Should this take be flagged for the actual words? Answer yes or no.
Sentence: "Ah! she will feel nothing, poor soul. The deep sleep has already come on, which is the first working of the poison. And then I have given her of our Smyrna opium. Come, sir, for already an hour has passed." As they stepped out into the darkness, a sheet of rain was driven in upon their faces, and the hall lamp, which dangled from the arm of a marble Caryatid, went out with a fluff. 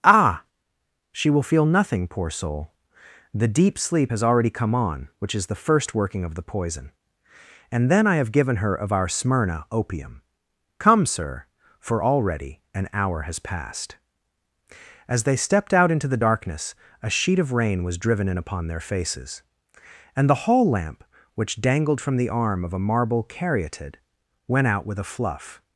no